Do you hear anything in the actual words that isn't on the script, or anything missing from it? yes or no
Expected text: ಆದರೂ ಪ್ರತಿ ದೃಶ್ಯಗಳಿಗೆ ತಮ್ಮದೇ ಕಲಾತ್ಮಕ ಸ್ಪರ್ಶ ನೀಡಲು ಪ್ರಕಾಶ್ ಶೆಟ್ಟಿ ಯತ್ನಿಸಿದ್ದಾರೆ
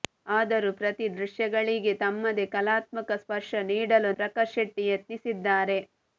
no